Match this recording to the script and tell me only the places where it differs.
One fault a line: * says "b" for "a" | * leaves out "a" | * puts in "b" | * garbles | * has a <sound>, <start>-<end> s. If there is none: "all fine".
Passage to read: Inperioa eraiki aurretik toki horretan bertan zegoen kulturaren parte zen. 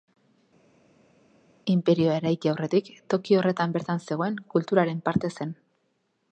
all fine